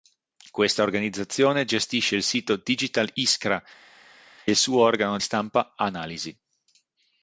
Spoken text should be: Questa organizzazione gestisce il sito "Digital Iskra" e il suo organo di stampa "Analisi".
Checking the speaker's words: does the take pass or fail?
fail